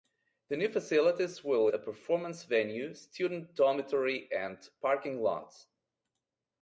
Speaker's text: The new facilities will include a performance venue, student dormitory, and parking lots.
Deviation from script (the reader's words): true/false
true